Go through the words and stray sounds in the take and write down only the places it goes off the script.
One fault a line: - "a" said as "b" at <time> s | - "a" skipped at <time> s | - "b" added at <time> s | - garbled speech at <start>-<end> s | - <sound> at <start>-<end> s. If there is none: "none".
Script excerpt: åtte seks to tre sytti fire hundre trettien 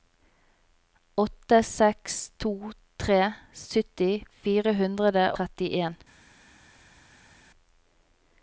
none